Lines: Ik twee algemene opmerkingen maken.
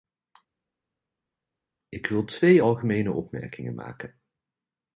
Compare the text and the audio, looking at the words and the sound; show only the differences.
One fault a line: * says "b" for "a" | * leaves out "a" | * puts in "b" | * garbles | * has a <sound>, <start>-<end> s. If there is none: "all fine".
* puts in "wil"